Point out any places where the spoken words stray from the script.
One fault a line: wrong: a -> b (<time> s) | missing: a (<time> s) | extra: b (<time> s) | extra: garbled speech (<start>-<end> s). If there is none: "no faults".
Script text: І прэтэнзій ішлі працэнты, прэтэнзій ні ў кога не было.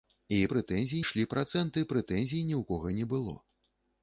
no faults